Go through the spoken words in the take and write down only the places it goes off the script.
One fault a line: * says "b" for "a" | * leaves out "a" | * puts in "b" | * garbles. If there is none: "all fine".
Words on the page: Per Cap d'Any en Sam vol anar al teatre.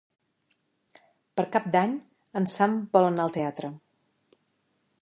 all fine